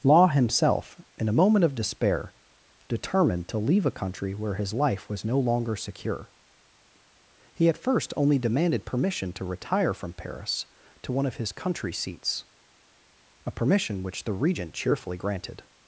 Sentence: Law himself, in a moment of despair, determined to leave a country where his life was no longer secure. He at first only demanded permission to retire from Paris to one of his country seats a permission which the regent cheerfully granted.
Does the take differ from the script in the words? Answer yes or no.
no